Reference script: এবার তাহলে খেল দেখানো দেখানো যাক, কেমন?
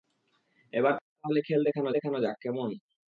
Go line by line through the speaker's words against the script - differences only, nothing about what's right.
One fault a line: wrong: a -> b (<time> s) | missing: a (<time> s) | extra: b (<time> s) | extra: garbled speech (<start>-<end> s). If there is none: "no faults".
no faults